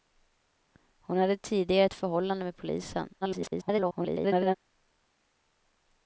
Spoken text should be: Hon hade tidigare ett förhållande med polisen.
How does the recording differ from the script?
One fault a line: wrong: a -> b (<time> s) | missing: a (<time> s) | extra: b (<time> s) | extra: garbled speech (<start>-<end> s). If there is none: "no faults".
extra: garbled speech (3.2-4.6 s)